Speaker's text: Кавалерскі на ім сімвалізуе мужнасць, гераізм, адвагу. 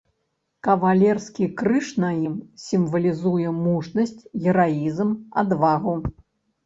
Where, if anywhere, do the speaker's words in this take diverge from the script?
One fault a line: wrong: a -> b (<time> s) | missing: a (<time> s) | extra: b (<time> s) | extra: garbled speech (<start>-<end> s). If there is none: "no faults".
extra: крыж (1.6 s)